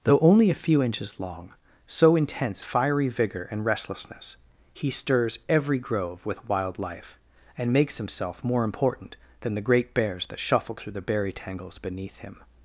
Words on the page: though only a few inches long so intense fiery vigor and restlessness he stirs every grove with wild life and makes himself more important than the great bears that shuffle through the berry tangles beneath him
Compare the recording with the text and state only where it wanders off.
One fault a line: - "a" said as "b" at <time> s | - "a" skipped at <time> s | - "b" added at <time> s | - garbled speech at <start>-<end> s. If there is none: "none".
none